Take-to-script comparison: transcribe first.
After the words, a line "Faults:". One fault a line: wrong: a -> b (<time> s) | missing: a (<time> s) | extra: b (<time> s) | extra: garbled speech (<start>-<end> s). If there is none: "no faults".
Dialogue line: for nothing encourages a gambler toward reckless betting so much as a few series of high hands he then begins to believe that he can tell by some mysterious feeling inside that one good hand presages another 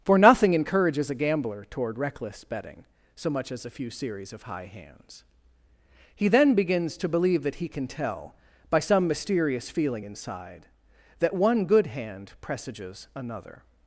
for nothing encourages a gambler toward reckless betting so much as a few series of high hands he then begins to believe that he can tell by some mysterious feeling inside that one good hand presages another
Faults:
no faults